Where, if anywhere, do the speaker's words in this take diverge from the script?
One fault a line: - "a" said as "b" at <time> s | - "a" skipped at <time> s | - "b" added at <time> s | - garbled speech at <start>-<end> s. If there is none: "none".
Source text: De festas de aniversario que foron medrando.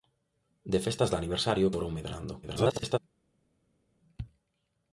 - "que" skipped at 1.7 s
- garbled speech at 2.4-3.0 s